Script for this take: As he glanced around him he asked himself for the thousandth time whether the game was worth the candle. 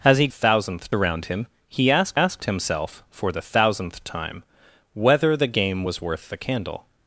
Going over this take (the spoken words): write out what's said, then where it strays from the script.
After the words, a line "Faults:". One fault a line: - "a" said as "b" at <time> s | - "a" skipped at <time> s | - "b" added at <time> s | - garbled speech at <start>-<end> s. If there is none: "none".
As he thousandth around him he asked asked himself for the thousandth time whether the game was worth the candle.
Faults:
- "glanced" said as "thousandth" at 0.3 s
- "asked" added at 2.1 s